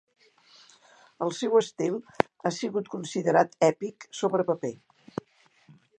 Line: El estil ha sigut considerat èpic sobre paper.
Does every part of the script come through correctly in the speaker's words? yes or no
no